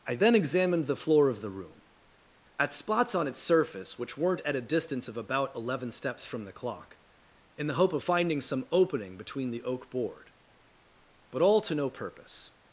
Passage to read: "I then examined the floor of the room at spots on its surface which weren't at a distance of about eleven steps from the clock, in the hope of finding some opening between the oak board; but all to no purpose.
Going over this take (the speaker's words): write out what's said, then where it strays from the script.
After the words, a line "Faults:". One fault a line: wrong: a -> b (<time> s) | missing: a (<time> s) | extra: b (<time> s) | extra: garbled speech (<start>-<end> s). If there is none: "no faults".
"I then examined the floor of the room at spots on its surface which weren't at a distance of about eleven steps from the clock, in the hope of finding some opening between the oak board; but all to no purpose.
Faults:
no faults